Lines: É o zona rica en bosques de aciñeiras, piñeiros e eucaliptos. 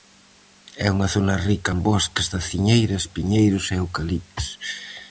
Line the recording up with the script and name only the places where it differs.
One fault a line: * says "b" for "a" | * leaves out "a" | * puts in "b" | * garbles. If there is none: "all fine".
* says "unha" for "o"